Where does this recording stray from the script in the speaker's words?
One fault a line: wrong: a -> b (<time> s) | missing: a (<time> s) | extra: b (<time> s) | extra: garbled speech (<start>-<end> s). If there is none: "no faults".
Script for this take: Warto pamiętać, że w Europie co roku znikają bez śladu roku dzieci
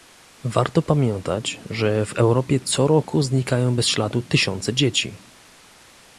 wrong: roku -> tysiące (4.2 s)